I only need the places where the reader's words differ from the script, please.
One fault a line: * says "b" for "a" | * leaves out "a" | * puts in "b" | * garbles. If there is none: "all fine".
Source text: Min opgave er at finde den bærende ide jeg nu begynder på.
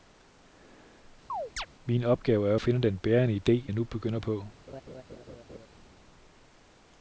all fine